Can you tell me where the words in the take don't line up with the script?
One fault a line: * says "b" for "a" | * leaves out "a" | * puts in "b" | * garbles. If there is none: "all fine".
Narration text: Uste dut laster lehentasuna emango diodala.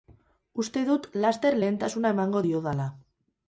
all fine